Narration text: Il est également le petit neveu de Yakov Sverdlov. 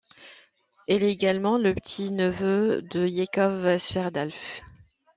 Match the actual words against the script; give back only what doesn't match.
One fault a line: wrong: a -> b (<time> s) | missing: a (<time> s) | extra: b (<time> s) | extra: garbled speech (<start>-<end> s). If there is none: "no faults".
no faults